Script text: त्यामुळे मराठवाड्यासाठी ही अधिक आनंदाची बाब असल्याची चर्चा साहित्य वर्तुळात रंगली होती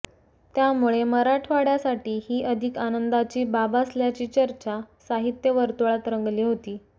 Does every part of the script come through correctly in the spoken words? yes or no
yes